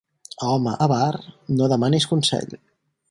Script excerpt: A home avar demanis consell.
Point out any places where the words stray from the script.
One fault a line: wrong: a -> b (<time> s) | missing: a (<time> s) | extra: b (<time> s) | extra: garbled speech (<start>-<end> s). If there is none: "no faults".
extra: no (1.6 s)